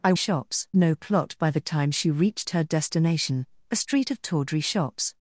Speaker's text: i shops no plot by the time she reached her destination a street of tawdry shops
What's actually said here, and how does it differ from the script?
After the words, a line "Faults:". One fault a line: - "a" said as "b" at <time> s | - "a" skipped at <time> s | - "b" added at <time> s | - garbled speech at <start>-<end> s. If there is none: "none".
i shops no plot by the time she reached her destination a street of tawdry shops
Faults:
none